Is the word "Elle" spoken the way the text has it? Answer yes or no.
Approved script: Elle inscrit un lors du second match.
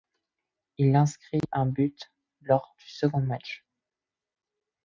no